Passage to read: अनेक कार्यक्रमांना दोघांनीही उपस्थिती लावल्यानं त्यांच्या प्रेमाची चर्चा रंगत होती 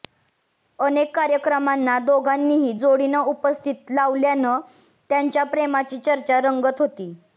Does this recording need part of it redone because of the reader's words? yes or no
yes